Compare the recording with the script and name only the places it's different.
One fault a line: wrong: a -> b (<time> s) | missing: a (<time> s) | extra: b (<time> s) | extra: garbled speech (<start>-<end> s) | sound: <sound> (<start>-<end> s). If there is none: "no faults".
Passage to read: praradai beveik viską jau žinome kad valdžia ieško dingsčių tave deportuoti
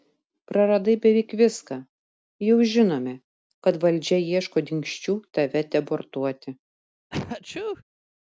sound: sneeze (7.1-7.8 s)